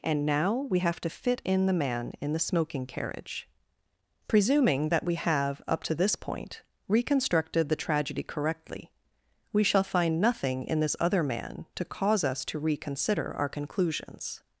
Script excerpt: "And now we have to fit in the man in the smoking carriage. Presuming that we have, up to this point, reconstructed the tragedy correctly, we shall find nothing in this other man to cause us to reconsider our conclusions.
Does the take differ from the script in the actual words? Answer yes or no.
no